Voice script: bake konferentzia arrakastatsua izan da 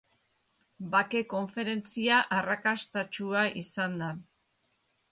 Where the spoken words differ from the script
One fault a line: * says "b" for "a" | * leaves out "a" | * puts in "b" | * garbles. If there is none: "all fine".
all fine